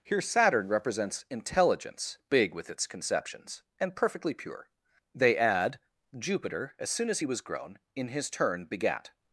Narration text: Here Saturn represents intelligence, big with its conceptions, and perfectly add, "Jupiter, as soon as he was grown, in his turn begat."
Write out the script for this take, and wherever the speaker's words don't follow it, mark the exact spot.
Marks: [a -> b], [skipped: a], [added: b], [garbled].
Here Saturn represents intelligence, big with its conceptions, and perfectly [added: pure They] add, "Jupiter, as soon as he was grown, in his turn begat."